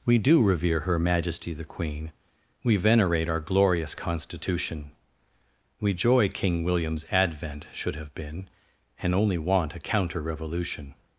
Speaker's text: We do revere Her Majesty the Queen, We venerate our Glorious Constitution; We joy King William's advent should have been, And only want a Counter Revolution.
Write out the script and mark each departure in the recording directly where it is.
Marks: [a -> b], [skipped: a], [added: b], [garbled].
We do revere Her Majesty the Queen, We venerate our Glorious Constitution; We joy King William's advent should have been, And only want a Counter Revolution.